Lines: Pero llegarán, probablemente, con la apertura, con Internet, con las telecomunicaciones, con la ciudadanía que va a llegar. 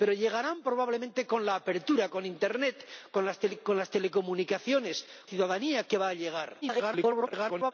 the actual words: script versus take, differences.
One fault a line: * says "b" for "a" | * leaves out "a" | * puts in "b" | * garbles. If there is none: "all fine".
* leaves out "con la"
* garbles